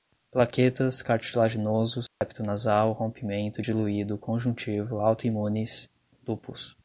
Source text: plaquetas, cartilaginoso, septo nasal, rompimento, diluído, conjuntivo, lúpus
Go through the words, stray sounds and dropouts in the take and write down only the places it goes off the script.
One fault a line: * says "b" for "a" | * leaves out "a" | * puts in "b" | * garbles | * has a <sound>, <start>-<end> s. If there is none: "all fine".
* has a dropout, 2.1-2.2 s
* puts in "autoimunes"